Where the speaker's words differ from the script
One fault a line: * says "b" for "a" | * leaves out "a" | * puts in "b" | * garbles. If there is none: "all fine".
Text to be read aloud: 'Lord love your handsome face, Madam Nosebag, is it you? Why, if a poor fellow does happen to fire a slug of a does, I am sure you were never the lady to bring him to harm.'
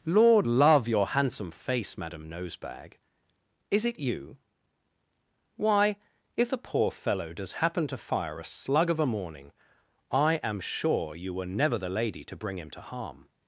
* says "morning" for "does"